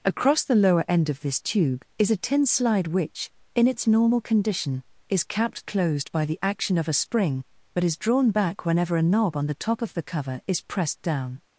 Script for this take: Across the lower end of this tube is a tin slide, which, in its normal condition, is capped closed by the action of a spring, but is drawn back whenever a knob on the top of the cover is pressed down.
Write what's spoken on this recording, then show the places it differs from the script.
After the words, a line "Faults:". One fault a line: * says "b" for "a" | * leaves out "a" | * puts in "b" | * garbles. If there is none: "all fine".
Across the lower end of this tube is a tin slide, which, in its normal condition, is capped closed by the action of a spring, but is drawn back whenever a knob on the top of the cover is pressed down.
Faults:
all fine